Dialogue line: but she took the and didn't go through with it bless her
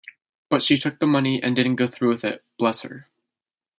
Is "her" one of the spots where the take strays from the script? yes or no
no